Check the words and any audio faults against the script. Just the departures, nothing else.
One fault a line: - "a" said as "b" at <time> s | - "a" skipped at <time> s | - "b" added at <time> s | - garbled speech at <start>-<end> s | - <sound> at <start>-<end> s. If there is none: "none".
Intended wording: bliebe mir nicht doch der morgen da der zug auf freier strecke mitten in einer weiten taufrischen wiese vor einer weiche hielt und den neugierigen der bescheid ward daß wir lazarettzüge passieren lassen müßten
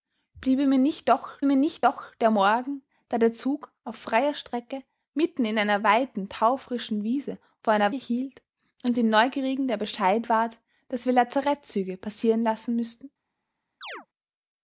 - "mir nicht doch" added at 1.4 s
- "weiche" skipped at 7.9 s
- chirp at 13.8-14.1 s